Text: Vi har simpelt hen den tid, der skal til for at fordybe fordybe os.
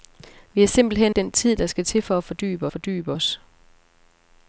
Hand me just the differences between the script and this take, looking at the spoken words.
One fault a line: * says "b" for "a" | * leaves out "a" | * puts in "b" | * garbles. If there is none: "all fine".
all fine